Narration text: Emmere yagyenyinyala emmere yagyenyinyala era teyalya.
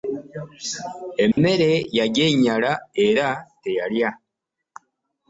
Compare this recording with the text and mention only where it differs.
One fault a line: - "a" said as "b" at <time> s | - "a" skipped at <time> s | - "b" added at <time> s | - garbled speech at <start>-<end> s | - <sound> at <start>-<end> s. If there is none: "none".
- dropout at 1.3-1.4 s
- "emmere yagyenyinyala" skipped at 2.7 s